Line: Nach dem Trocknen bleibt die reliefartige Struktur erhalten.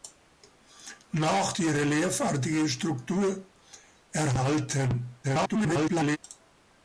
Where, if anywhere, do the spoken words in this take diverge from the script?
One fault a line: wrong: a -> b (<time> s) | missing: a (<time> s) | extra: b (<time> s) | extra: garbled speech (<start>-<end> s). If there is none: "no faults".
missing: dem Trocknen bleibt (1.5 s)
extra: garbled speech (5.2-6.2 s)